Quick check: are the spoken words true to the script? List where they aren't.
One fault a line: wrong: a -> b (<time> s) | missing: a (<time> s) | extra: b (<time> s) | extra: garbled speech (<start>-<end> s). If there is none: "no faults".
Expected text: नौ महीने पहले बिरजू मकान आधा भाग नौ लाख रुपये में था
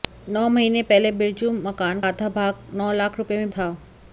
no faults